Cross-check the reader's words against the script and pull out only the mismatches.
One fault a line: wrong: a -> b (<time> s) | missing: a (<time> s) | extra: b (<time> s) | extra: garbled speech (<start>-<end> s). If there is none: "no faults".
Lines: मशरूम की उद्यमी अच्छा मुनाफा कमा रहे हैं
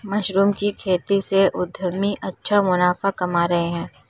extra: खेती से (0.8 s)